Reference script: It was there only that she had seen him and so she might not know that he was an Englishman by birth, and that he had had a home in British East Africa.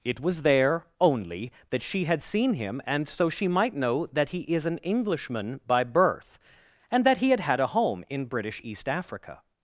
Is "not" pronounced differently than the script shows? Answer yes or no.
yes